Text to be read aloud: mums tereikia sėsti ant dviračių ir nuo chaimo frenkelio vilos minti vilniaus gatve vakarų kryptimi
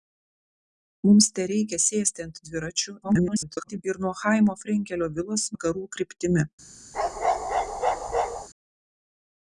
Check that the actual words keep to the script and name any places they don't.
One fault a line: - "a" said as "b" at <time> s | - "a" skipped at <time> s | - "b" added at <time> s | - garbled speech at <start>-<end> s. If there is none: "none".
- garbled speech at 3.0-3.8 s
- "minti vilniaus gatve" skipped at 5.5 s